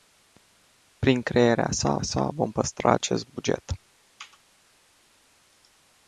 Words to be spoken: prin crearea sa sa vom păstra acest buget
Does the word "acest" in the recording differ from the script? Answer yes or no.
no